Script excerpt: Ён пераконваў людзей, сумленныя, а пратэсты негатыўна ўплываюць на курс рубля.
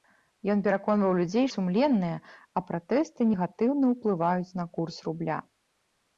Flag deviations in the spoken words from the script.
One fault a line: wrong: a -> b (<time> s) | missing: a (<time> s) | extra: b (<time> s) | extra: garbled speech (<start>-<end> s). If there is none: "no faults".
no faults